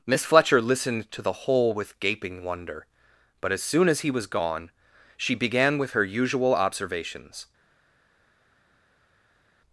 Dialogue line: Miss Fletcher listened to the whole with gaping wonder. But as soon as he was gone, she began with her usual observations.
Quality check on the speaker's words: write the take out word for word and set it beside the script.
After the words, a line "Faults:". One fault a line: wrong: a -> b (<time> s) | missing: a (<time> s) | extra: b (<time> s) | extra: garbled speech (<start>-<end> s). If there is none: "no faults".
Miss Fletcher listened to the whole with gaping wonder. But as soon as he was gone, she began with her usual observations.
Faults:
no faults